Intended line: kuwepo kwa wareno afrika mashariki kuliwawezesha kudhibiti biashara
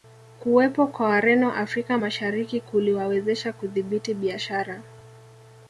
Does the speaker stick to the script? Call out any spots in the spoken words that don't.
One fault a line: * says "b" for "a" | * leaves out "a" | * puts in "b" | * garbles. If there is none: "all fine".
all fine